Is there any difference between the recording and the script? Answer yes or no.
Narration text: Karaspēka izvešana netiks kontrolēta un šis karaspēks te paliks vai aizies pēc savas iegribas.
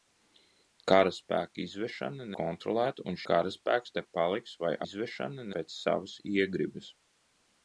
yes